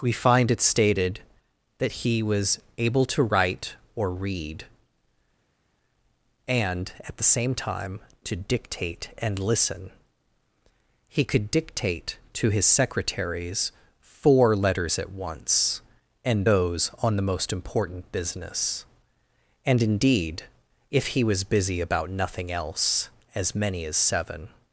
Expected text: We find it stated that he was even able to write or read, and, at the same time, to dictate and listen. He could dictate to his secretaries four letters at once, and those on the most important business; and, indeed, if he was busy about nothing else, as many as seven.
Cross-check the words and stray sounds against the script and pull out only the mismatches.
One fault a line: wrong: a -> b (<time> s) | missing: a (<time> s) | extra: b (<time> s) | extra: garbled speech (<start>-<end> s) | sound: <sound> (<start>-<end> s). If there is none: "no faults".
missing: even (2.6 s)